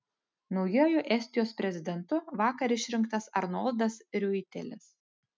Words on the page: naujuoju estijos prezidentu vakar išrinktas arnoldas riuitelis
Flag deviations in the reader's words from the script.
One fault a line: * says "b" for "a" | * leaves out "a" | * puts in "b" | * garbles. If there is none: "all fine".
all fine